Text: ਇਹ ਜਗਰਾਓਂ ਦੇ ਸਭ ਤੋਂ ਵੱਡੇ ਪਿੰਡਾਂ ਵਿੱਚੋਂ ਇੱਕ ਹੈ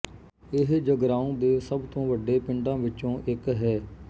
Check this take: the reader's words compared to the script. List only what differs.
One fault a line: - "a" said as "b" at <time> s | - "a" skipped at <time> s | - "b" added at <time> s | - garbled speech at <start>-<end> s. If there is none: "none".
none